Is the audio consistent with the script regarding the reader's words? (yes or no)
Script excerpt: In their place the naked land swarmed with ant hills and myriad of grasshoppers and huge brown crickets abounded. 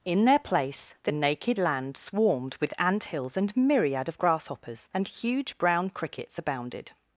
yes